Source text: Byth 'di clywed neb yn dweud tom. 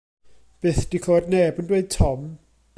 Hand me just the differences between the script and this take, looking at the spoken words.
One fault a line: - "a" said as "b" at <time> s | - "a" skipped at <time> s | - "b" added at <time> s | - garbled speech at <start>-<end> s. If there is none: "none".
none